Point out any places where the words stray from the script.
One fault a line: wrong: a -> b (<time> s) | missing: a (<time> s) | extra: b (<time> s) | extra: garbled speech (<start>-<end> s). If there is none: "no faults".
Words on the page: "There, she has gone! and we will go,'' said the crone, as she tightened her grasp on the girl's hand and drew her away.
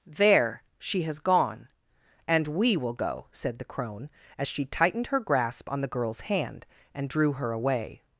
no faults